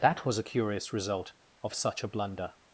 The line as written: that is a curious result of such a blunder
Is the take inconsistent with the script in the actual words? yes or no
yes